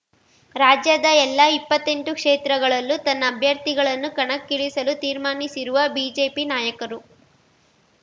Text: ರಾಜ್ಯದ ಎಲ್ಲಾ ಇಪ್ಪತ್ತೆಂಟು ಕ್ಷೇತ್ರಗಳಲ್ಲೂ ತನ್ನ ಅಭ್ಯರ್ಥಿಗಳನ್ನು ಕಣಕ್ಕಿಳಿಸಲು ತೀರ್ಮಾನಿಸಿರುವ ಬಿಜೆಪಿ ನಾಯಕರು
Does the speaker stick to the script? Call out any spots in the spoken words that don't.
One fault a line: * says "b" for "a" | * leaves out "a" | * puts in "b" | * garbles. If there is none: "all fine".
all fine